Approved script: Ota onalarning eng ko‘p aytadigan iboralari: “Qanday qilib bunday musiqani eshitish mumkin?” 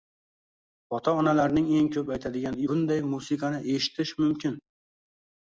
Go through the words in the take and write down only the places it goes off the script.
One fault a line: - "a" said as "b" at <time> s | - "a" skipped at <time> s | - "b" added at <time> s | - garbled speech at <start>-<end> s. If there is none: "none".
- "iboralari Qanday qilib" skipped at 2.6 s